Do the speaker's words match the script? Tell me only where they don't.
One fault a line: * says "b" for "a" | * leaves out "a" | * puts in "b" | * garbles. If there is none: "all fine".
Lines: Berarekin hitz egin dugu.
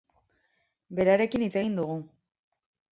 all fine